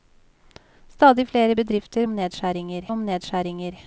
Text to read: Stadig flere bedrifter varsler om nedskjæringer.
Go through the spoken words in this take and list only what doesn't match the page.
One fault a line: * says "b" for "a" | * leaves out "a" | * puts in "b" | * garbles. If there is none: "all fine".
* says "nedskjæringer" for "varsler"